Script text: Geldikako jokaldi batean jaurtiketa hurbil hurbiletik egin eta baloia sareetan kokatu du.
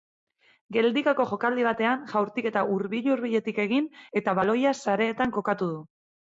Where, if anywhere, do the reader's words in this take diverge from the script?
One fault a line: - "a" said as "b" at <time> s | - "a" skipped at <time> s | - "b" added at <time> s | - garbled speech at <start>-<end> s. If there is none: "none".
none